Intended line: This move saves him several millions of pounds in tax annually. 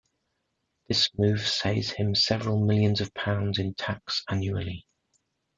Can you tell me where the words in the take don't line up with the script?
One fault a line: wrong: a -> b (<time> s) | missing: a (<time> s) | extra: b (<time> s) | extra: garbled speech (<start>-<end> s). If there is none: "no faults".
no faults